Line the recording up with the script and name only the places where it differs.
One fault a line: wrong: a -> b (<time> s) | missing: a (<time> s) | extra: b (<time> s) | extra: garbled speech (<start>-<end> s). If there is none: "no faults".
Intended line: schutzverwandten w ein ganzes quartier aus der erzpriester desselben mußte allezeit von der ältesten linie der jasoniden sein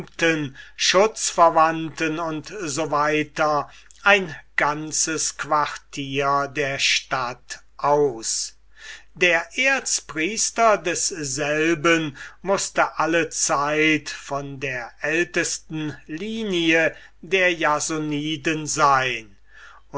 extra: u s (2.2 s)
extra: der stadt (6.5 s)